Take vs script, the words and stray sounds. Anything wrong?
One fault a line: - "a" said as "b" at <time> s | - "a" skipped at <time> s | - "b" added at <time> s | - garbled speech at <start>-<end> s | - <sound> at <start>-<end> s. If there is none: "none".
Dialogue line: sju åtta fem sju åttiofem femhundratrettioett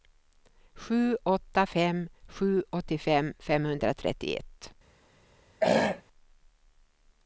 - throat clearing at 5.6-6.0 s